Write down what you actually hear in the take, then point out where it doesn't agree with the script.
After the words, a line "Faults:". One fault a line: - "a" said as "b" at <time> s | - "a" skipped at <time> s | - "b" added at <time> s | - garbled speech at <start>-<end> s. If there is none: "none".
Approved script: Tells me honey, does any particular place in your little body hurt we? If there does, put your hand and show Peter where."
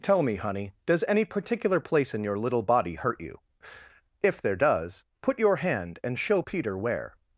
Tell me honey, does any particular place in your little body hurt you? If there does, put your hand and show Peter where."
Faults:
- "Tells" said as "Tell" at 0.0 s
- "we" said as "you" at 3.2 s